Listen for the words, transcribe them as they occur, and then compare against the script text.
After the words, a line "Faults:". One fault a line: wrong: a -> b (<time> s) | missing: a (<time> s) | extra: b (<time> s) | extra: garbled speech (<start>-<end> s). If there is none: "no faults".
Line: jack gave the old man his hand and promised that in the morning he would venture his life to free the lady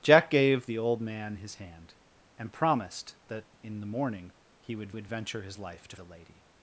jack gave the old man his hand and promised that in the morning he would would venture his life to the lady
Faults:
extra: would (4.9 s)
missing: free (6.0 s)